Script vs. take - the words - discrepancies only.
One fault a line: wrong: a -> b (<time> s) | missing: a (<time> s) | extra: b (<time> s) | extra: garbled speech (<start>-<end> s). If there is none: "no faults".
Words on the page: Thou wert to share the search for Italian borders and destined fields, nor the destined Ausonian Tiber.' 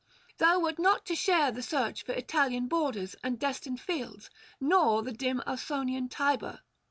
extra: not (0.8 s)
wrong: destined -> dim (5.1 s)